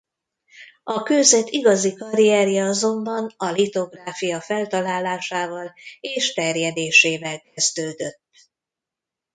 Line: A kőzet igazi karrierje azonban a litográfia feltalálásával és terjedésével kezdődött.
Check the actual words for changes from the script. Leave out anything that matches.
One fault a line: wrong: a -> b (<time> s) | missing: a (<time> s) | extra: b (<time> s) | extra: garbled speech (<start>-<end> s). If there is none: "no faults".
no faults